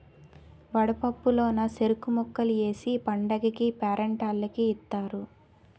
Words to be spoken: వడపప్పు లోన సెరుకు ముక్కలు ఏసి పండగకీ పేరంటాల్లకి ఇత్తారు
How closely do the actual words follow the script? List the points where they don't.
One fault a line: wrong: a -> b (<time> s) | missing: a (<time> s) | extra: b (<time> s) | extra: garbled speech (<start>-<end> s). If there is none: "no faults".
no faults